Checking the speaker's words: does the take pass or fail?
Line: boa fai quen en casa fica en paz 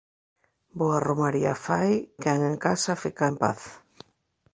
fail